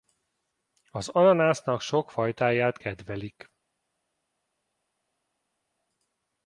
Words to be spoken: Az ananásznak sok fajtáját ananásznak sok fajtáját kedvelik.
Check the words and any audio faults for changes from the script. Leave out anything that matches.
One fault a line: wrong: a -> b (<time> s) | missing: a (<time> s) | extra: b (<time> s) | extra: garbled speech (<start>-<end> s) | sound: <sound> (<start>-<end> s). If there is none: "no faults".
missing: ananásznak sok fajtáját (2.8 s)